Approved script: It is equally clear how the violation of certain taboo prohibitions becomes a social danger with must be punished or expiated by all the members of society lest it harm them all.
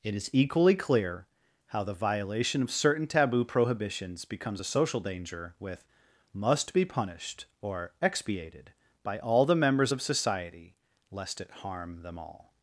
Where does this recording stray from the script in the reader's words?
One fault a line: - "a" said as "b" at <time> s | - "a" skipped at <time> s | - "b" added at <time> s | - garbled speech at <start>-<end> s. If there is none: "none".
none